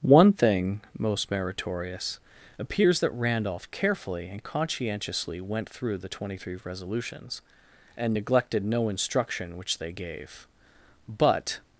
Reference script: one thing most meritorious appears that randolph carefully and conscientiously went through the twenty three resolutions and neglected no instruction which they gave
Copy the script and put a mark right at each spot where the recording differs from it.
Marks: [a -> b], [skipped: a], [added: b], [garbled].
one thing most meritorious appears that randolph carefully and conscientiously went through the twenty three resolutions and neglected no instruction which they gave [added: but]